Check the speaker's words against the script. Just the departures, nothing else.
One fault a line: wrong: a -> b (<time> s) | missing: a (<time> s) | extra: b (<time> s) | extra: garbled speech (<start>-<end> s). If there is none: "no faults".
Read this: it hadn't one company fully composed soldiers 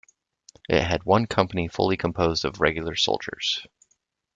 wrong: hadn't -> had (0.8 s)
extra: of regular (2.4 s)